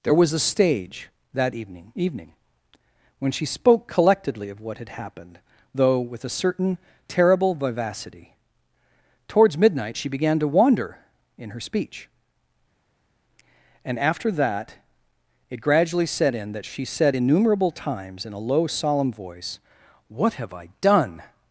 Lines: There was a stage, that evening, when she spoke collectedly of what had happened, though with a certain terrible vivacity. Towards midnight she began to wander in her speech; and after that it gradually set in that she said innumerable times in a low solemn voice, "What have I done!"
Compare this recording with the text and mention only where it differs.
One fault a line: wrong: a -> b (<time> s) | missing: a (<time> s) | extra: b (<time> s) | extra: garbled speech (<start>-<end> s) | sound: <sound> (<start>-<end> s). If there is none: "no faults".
extra: evening (1.9 s)